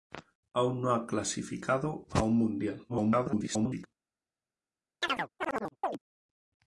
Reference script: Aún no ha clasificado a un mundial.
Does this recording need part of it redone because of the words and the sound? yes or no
yes